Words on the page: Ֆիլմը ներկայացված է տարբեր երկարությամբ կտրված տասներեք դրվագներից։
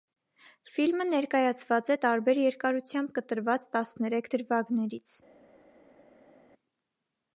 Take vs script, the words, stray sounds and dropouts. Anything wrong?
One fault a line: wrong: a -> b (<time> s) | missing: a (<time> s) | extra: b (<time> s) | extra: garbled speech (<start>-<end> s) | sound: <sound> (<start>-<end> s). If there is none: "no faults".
no faults